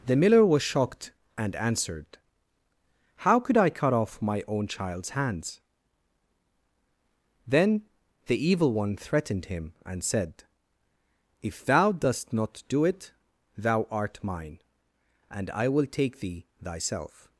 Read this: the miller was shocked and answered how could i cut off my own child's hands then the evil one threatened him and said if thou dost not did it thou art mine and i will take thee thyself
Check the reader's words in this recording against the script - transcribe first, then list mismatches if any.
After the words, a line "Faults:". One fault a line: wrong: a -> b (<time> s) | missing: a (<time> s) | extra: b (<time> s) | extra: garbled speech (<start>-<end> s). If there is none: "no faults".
the miller was shocked and answered how could i cut off my own child's hands then the evil one threatened him and said if thou dost not do it thou art mine and i will take thee thyself
Faults:
wrong: did -> do (12.7 s)